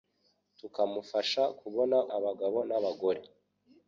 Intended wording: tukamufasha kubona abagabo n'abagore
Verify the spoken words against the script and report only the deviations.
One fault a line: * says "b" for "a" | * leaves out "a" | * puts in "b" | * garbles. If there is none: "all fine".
all fine